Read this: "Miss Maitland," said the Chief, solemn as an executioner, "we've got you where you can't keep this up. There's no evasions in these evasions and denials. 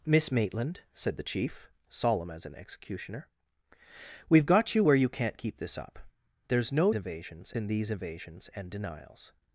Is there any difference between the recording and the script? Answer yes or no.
no